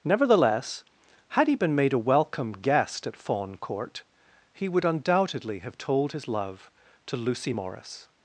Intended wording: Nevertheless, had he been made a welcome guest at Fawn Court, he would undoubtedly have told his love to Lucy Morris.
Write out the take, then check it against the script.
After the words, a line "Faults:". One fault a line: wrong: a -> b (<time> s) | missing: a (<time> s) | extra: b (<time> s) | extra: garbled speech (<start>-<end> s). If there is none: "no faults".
Nevertheless, had he been made a welcome guest at Fawn Court, he would undoubtedly have told his love to Lucy Morris.
Faults:
no faults